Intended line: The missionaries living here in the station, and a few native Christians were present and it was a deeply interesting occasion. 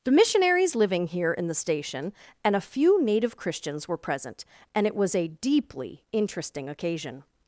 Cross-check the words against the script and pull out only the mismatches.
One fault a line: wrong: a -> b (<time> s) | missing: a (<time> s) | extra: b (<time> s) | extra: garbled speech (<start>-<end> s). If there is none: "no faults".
no faults